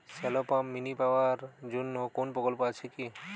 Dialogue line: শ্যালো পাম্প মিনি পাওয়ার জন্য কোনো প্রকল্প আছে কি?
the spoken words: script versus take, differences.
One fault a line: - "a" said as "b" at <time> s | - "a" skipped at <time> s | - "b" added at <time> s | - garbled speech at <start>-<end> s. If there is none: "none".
none